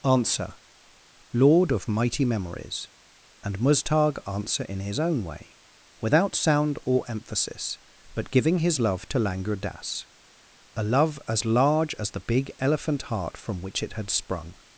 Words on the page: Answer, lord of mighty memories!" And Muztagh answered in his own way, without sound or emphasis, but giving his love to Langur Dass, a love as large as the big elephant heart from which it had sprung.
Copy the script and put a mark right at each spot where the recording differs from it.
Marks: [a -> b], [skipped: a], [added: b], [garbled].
Answer, lord of mighty memories!" And Muztagh [answered -> answer] in his own way, without sound or emphasis, but giving his love to Langur Dass, a love as large as the big elephant heart from which it had sprung.